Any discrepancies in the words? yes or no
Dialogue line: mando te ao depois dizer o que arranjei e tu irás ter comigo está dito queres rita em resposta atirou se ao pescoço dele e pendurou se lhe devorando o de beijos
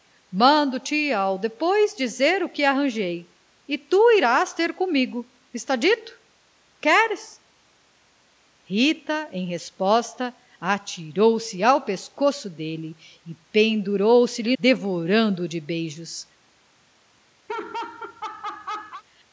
no